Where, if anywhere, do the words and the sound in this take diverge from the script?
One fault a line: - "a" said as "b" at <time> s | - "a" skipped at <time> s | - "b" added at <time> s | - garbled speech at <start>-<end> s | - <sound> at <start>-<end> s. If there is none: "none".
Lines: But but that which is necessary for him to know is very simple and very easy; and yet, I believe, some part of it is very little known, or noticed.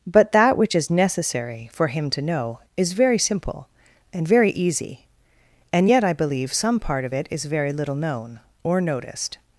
- "but" skipped at 0.3 s